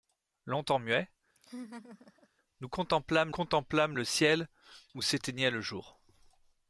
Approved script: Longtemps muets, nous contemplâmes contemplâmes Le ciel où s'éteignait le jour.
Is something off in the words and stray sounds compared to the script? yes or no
yes